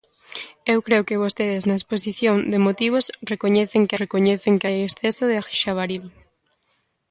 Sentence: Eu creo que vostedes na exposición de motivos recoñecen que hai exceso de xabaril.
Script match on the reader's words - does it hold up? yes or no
no